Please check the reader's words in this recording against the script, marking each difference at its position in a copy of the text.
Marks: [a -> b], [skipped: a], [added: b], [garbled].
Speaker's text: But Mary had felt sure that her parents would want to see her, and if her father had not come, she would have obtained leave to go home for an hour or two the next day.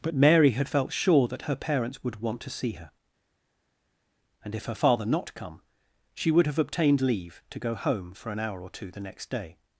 But Mary had felt sure that her parents would want to see her, and if her father [skipped: had] not come, she would have obtained leave to go home for an hour or two the next day.